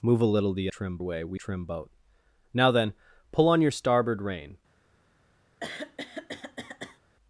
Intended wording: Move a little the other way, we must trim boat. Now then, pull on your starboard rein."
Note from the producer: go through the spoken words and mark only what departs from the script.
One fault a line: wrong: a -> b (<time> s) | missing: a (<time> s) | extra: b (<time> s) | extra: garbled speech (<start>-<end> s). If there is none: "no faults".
wrong: other -> trim (0.7 s)
missing: must (1.4 s)